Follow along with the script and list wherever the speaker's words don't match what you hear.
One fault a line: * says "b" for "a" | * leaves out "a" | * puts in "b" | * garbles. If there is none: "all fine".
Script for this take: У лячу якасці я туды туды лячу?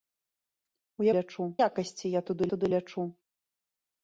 all fine